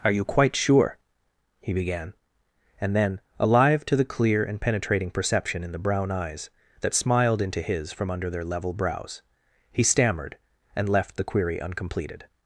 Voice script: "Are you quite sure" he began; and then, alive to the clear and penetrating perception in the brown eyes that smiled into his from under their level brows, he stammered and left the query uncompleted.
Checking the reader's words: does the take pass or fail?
pass